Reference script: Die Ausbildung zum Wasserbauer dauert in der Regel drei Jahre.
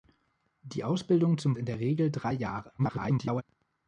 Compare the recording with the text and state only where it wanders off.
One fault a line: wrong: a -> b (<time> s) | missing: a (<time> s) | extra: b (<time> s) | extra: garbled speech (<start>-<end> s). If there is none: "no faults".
missing: Wasserbauer dauert (1.6 s)
extra: garbled speech (2.8-3.4 s)